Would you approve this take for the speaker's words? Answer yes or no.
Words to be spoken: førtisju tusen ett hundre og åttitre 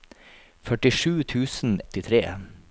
no